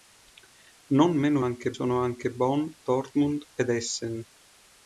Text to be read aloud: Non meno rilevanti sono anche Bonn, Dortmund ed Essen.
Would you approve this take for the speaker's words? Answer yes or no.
no